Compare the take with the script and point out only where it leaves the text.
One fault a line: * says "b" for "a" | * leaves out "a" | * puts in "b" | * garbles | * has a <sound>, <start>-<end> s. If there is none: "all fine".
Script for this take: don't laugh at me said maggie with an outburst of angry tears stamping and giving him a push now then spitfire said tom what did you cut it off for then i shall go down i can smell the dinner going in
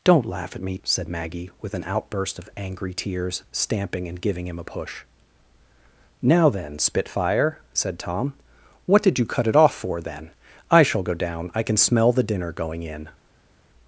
all fine